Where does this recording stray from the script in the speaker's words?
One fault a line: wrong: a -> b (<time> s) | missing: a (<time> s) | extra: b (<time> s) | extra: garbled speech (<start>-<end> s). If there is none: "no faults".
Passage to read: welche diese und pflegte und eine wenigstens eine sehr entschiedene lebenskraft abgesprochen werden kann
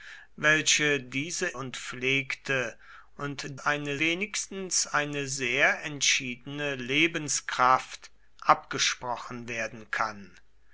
no faults